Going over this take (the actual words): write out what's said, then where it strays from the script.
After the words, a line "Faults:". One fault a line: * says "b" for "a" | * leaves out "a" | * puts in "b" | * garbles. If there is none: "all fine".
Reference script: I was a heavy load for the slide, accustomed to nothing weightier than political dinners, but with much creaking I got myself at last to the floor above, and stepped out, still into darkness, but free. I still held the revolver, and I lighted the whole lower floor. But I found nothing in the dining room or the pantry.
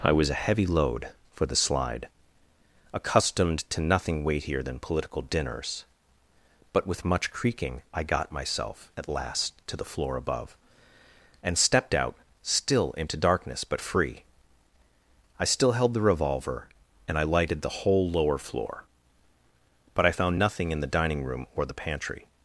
I was a heavy load for the slide, accustomed to nothing weightier than political dinners, but with much creaking I got myself at last to the floor above, and stepped out, still into darkness, but free. I still held the revolver, and I lighted the whole lower floor. But I found nothing in the dining room or the pantry.
Faults:
all fine